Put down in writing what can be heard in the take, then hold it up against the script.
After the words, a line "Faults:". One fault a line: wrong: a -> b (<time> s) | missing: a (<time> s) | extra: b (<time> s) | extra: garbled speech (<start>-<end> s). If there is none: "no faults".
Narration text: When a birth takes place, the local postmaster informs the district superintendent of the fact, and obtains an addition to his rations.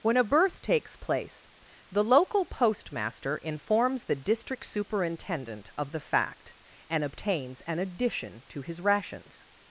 When a birth takes place, the local postmaster informs the district superintendent of the fact, and obtains an addition to his rations.
Faults:
no faults